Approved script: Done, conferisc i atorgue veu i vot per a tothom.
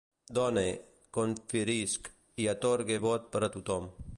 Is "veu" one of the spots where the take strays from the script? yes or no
yes